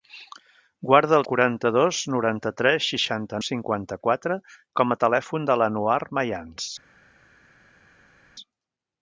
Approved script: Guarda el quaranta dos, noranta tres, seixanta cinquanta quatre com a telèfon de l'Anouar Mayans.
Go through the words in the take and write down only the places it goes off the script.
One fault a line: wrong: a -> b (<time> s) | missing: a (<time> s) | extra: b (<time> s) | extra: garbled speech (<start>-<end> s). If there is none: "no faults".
no faults